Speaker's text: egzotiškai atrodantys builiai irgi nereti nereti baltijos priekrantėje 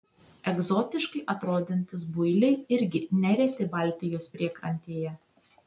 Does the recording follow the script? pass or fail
fail